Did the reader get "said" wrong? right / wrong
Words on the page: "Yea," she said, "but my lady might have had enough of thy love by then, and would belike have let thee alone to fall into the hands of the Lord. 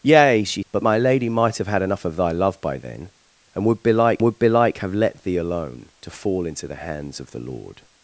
wrong